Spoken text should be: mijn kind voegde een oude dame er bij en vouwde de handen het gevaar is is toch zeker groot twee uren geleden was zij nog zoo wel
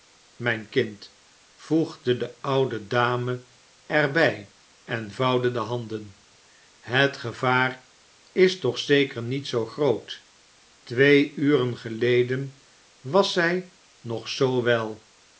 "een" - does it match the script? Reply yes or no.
no